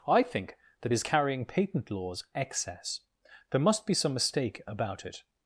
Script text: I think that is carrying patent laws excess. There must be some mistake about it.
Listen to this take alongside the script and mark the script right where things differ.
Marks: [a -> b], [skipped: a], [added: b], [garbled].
I think that is carrying patent laws excess. There must be some mistake about it.